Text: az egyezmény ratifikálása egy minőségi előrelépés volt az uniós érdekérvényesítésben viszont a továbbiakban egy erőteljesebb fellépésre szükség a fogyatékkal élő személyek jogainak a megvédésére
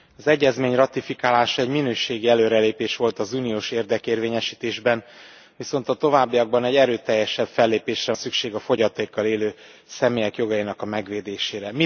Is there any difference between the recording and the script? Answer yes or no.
no